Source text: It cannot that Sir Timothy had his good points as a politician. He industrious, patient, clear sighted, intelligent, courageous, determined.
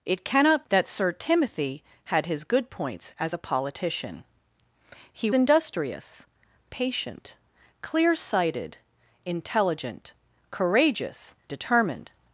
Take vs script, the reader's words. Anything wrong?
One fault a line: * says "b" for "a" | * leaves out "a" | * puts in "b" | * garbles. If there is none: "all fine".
all fine